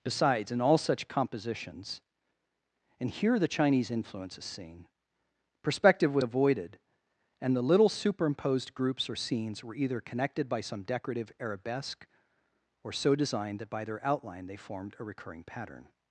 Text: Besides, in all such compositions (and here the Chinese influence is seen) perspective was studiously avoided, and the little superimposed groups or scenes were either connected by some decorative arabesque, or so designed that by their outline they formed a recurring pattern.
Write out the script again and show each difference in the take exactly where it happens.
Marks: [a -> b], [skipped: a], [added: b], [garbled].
Besides, in all such compositions (and here the Chinese influence is seen) perspective was [skipped: studiously] avoided, and the little superimposed groups or scenes were either connected by some decorative arabesque, or so designed that by their outline they formed a recurring pattern.